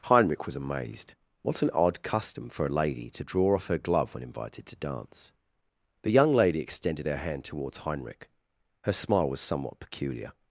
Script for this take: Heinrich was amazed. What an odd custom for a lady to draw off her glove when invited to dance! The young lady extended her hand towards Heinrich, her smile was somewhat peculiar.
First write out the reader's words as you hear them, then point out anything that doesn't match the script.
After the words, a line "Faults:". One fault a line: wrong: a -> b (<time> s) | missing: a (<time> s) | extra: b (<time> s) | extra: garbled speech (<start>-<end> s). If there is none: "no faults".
Heinrich was amazed. What an odd custom for a lady to draw off her glove when invited to dance! The young lady extended her hand towards Heinrich, her smile was somewhat peculiar.
Faults:
no faults